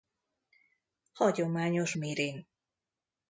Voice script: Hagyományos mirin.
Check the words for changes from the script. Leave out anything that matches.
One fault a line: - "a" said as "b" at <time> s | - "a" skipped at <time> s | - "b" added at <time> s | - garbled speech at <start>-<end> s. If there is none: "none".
none